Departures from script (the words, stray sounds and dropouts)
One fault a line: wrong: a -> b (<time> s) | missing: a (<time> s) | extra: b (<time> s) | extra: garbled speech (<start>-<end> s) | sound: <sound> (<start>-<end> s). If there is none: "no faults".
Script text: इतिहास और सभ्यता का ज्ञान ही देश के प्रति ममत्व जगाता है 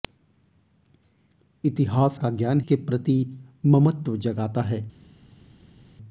missing: और सभ्यता (2.2 s)
missing: ही देश (2.6 s)